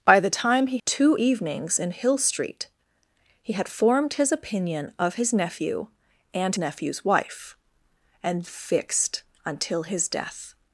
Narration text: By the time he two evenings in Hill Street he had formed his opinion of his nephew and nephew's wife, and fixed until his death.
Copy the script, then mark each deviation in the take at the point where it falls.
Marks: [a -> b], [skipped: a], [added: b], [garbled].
By the time he two evenings in Hill Street he had formed his opinion of his nephew and nephew's wife, and fixed until his death.